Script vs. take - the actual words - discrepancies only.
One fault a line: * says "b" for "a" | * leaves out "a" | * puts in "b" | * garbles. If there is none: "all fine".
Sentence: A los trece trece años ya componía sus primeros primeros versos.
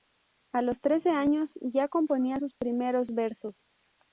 * leaves out "trece"
* leaves out "primeros"